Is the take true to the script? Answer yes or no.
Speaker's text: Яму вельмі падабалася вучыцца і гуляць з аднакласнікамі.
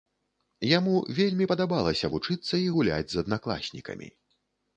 yes